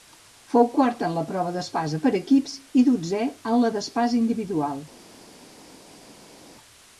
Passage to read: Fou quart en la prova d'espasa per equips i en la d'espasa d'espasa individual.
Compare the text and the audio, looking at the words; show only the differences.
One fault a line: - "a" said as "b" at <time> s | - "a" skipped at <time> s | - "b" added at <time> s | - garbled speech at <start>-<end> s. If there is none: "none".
- "dotzè" added at 2.9 s
- "d'espasa" skipped at 4.2 s